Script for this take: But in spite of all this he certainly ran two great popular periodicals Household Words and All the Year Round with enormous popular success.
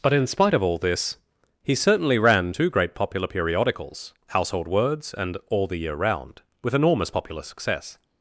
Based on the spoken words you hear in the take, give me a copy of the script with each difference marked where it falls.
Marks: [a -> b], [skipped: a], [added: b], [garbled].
But in spite of all this he certainly ran two great popular periodicals Household Words and All the Year Round with enormous popular success.